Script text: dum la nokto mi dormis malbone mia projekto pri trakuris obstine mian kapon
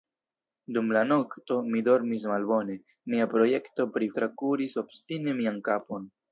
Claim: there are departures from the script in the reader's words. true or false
false